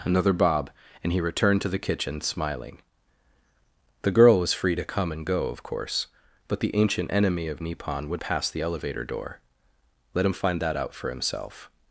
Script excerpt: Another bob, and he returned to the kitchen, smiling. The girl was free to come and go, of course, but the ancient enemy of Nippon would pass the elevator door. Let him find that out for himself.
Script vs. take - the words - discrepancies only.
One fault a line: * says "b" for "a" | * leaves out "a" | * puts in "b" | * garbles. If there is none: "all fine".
all fine